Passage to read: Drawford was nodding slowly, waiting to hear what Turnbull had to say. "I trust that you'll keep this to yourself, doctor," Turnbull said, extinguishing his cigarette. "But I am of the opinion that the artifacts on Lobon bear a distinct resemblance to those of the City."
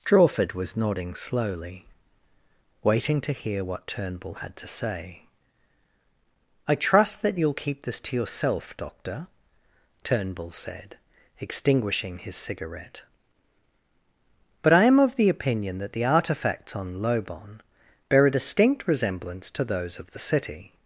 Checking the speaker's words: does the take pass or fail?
pass